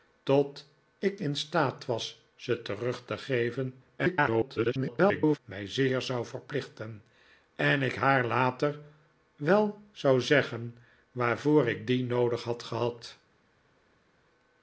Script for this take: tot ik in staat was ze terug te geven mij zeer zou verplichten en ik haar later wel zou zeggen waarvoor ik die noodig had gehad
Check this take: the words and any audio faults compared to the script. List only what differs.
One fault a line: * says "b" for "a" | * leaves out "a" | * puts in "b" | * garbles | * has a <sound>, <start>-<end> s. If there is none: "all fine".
* garbles